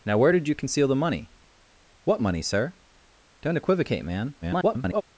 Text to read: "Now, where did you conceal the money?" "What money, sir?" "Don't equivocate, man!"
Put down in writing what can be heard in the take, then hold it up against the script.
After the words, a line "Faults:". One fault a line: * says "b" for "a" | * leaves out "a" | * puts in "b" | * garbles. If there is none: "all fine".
"Now, where did you conceal the money?" "What money, sir?" "Don't equivocate, man!" [garbled]
Faults:
* garbles